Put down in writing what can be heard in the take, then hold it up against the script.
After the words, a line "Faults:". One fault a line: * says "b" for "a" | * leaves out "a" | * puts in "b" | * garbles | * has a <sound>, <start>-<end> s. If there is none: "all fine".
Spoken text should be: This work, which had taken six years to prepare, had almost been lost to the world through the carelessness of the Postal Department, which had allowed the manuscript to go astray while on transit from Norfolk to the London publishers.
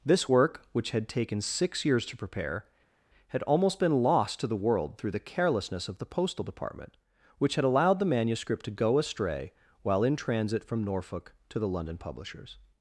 This work, which had taken six years to prepare, had almost been lost to the world through the carelessness of the Postal Department, which had allowed the manuscript to go astray while in transit from Norfolk to the London publishers.
Faults:
* says "in" for "on"